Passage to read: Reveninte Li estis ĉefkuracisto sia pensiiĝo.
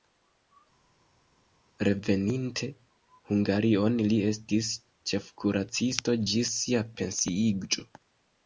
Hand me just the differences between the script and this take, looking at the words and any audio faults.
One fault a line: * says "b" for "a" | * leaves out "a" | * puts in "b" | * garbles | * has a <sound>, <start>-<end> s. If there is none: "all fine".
* puts in "Hungarion"
* puts in "ĝis"